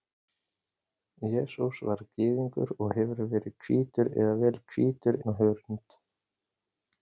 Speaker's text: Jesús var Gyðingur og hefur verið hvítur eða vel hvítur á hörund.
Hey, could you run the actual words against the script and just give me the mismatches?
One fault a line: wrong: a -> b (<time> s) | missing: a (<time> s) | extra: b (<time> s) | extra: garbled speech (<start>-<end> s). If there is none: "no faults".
no faults